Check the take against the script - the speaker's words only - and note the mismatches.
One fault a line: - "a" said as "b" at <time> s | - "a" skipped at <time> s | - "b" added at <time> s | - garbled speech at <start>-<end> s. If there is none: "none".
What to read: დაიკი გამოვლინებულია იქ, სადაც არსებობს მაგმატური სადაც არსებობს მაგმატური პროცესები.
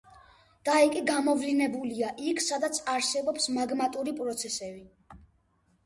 - "სადაც არსებობს მაგმატური" skipped at 4.2 s